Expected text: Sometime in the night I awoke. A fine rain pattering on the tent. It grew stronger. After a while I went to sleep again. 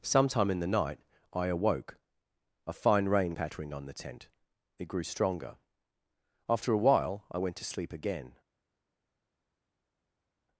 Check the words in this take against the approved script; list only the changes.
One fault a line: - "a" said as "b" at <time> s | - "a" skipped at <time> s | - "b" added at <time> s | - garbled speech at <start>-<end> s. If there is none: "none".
none